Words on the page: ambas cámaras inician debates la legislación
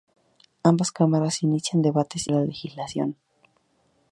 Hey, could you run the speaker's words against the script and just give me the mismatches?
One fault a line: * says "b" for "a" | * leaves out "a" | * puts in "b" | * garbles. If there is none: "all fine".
all fine